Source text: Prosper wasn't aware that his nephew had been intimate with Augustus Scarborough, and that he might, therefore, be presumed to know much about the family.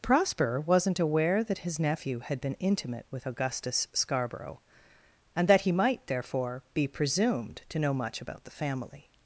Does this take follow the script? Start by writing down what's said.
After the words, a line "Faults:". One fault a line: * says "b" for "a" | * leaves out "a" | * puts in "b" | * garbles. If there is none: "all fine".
Prosper wasn't aware that his nephew had been intimate with Augustus Scarborough, and that he might, therefore, be presumed to know much about the family.
Faults:
all fine